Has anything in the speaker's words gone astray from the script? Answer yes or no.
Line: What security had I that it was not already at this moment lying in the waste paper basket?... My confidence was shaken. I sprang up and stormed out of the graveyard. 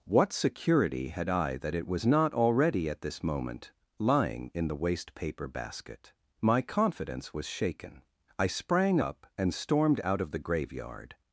no